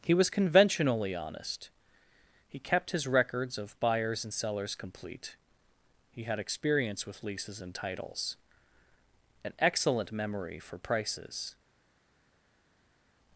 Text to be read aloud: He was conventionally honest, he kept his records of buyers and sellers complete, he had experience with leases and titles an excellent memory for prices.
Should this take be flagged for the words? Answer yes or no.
no